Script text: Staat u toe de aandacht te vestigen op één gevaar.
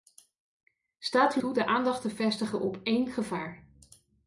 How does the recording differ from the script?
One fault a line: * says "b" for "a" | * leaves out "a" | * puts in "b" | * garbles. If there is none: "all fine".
all fine